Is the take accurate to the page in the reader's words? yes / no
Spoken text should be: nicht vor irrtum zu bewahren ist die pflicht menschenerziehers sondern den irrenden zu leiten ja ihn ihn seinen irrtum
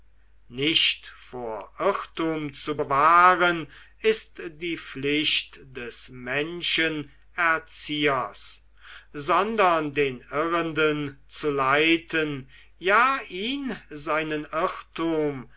no